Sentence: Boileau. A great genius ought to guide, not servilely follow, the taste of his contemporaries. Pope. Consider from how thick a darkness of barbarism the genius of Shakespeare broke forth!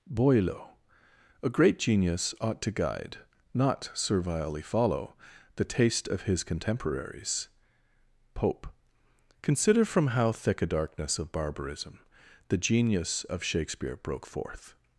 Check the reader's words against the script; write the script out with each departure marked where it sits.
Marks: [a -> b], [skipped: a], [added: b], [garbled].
Boileau. A great genius ought to guide, not servilely follow, the taste of his contemporaries. Pope. Consider from how thick a darkness of barbarism the genius of Shakespeare broke forth!